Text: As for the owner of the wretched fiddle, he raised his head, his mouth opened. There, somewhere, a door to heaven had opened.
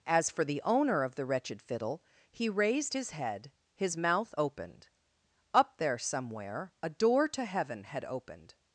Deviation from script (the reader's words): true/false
true